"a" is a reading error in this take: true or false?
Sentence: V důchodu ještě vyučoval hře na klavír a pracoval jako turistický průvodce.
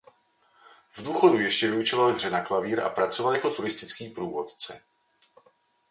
false